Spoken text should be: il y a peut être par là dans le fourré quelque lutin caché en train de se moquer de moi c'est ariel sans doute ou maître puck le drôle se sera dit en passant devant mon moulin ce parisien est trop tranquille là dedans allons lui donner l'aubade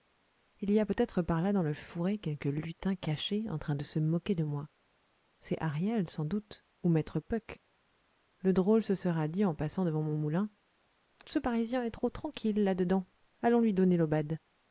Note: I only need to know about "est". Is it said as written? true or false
true